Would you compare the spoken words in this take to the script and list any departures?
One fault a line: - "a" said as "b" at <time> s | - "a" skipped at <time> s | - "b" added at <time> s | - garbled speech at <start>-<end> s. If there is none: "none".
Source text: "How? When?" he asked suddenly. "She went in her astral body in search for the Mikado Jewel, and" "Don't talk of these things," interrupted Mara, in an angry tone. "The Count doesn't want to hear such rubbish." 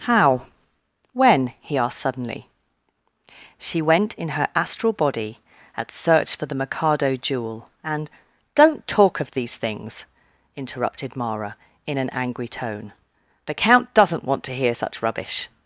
- "in" said as "at" at 5.8 s